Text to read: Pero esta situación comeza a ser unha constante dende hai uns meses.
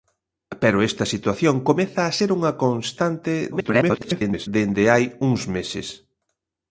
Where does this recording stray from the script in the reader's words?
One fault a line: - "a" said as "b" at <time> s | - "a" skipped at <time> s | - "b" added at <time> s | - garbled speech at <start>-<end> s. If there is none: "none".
- garbled speech at 3.5-4.5 s